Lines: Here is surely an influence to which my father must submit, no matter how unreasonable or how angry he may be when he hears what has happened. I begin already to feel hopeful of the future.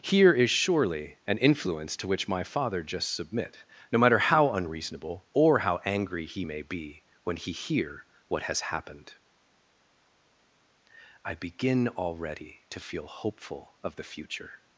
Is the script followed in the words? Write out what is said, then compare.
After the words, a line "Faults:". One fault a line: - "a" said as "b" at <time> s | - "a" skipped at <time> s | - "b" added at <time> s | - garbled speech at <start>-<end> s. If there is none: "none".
Here is surely an influence to which my father just submit, no matter how unreasonable or how angry he may be when he hear what has happened. I begin already to feel hopeful of the future.
Faults:
- "must" said as "just" at 2.8 s
- "hears" said as "hear" at 7.5 s